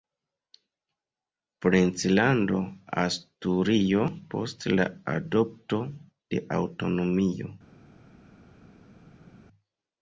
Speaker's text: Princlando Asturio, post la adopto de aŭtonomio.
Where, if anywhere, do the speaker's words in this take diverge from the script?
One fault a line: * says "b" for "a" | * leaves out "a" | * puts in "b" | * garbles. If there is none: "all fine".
all fine